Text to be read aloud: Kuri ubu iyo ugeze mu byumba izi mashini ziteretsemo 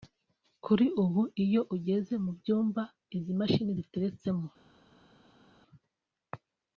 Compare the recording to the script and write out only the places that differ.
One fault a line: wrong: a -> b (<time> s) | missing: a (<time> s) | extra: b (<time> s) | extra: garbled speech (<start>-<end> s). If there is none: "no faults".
no faults